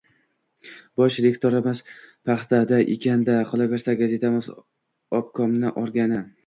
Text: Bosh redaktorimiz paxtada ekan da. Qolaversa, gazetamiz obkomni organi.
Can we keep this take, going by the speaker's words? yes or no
yes